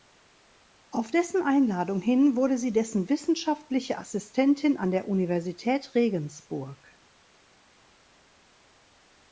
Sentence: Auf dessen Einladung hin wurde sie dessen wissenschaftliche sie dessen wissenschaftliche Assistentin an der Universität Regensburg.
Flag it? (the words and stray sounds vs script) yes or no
yes